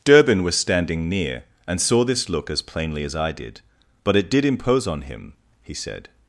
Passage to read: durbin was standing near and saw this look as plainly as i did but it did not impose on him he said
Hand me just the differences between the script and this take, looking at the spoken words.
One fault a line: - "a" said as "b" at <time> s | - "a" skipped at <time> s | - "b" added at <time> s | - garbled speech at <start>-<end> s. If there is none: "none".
- "not" skipped at 4.4 s